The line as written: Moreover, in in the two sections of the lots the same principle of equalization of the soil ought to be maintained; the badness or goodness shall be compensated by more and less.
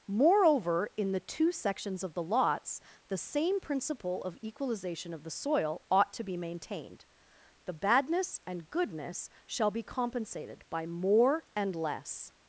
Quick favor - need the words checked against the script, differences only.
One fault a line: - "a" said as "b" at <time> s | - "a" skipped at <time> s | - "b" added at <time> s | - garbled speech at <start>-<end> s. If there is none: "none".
- "in" skipped at 1.1 s
- "or" said as "and" at 8.5 s